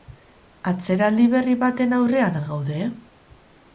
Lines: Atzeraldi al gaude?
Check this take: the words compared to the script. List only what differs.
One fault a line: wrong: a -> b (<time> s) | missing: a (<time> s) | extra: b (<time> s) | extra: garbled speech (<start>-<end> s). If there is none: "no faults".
extra: berri baten aurrean (1.3 s)